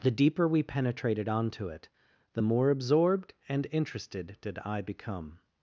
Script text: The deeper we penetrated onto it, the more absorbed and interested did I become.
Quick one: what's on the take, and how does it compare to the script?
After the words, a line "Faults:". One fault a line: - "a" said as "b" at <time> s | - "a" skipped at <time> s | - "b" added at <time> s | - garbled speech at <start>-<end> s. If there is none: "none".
The deeper we penetrated onto it, the more absorbed and interested did I become.
Faults:
none